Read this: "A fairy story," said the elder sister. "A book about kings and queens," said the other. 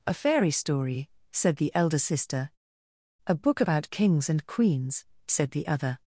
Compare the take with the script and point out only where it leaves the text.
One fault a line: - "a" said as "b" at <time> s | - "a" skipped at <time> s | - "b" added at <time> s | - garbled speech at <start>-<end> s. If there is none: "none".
none